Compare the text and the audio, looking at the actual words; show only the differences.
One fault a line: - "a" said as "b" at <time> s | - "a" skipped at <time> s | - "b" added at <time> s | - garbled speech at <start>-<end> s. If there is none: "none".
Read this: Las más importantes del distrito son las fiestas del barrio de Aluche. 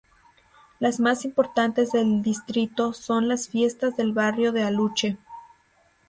none